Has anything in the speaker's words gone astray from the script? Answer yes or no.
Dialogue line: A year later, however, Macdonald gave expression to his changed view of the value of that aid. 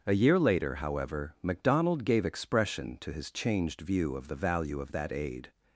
no